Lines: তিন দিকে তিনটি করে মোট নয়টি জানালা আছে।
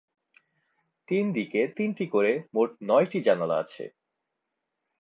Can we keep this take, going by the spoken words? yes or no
yes